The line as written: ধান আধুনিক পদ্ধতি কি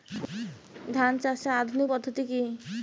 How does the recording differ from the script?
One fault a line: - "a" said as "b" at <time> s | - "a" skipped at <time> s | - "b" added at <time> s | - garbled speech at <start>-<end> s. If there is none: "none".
- "চাষের" added at 1.2 s